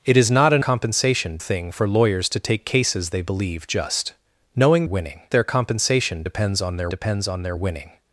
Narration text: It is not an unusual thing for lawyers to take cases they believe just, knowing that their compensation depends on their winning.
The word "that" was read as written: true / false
false